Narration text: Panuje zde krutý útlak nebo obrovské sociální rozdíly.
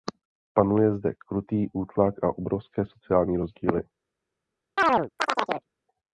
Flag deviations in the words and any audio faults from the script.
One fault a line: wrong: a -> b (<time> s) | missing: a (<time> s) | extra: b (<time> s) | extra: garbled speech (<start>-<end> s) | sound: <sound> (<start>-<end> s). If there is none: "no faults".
wrong: nebo -> a (2.2 s)
sound: chirp (4.8-5.7 s)